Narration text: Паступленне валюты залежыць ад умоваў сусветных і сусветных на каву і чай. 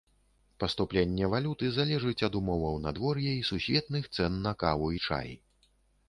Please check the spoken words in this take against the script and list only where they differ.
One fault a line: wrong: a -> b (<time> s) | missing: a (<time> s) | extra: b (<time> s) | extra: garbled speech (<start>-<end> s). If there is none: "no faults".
wrong: сусветных -> надвор'я (2.9 s)
extra: цэн (4.2 s)